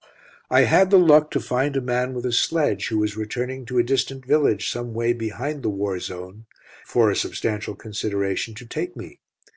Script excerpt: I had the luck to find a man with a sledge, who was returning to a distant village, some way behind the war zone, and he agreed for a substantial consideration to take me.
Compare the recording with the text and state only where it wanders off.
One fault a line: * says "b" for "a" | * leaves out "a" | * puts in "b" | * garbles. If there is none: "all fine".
* leaves out "and he agreed"